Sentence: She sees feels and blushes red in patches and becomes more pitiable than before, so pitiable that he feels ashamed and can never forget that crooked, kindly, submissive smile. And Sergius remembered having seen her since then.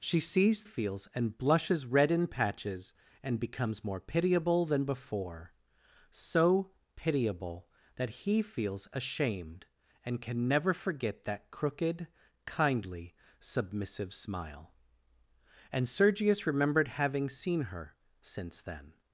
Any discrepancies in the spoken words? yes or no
no